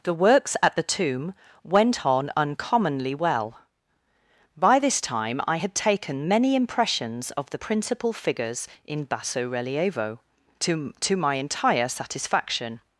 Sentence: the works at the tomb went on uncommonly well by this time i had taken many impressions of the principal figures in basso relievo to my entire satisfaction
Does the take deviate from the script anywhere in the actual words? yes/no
yes